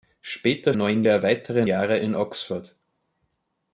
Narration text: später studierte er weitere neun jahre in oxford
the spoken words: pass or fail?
fail